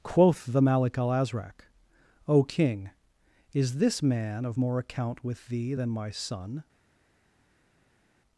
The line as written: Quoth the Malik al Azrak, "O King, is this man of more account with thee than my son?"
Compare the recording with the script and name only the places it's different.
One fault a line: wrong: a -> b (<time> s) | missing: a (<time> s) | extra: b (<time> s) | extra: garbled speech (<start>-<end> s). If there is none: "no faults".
no faults